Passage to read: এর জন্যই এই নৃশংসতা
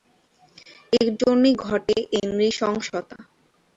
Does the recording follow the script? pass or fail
fail